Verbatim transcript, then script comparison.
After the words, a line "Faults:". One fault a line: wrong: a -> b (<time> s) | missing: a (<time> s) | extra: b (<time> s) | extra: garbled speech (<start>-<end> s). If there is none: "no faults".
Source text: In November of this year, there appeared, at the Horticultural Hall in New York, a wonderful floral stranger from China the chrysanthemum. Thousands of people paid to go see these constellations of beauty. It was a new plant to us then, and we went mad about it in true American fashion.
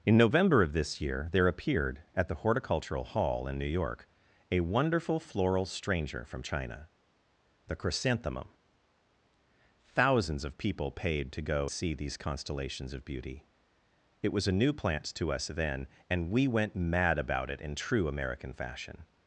In November of this year, there appeared, at the Horticultural Hall in New York, a wonderful floral stranger from China the chrysanthemum. Thousands of people paid to go see these constellations of beauty. It was a new plant to us then, and we went mad about it in true American fashion.
Faults:
no faults